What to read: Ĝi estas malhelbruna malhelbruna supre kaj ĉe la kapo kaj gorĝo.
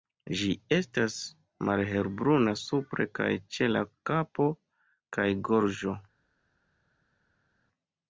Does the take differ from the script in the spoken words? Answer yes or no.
yes